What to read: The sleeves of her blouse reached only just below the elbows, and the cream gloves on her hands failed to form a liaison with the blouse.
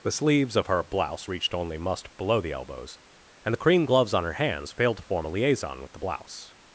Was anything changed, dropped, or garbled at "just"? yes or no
yes